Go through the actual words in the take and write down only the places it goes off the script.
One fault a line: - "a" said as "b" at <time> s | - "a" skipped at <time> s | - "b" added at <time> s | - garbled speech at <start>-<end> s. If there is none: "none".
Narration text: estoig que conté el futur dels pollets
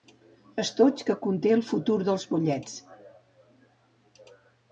none